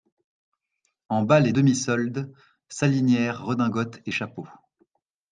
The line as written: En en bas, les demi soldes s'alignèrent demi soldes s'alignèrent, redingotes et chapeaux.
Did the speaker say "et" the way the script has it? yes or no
yes